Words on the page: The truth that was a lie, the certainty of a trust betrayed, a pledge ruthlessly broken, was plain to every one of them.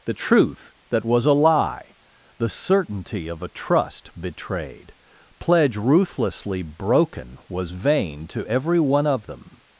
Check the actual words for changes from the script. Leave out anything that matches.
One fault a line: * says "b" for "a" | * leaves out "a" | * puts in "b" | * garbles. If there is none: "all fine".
* leaves out "a"
* says "vain" for "plain"